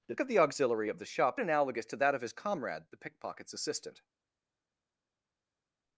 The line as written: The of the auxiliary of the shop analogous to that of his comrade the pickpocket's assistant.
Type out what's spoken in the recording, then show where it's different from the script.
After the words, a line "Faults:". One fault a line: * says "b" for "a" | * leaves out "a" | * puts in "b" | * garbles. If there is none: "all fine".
The of the auxiliary of the shop analogous to that of his comrade the pickpocket's assistant.
Faults:
all fine